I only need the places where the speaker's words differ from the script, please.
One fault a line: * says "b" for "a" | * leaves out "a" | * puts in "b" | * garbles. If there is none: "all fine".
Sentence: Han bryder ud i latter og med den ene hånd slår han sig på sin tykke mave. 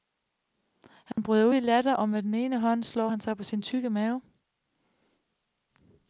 all fine